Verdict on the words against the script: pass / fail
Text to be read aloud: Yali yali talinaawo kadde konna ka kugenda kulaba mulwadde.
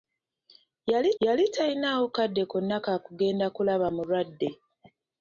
pass